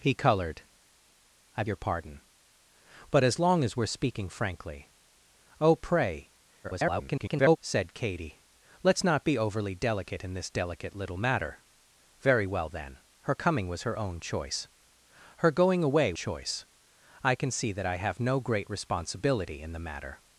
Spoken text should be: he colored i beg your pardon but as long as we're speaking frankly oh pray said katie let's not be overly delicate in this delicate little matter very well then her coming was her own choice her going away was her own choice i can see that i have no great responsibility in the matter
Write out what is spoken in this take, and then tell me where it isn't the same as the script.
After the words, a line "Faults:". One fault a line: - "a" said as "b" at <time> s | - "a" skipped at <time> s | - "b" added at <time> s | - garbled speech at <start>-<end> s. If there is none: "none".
he colored i your pardon but as long as we're speaking frankly oh pray [garbled] said katie let's not be overly delicate in this delicate little matter very well then her coming was her own choice her going away choice i can see that i have no great responsibility in the matter
Faults:
- "beg" skipped at 1.6 s
- garbled speech at 6.6-7.6 s
- "was her own" skipped at 16.1 s